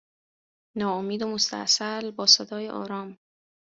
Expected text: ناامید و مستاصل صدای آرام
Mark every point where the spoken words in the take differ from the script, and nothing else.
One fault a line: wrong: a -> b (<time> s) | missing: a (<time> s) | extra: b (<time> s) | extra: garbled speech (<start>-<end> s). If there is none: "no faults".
extra: با (2.1 s)